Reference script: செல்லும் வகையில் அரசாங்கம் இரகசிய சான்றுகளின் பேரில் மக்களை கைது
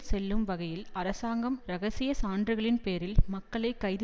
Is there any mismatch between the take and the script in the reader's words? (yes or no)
no